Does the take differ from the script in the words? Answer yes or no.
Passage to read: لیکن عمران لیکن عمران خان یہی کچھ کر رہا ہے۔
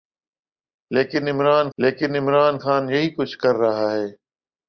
no